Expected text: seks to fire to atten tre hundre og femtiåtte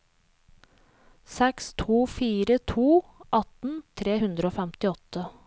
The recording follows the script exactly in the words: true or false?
true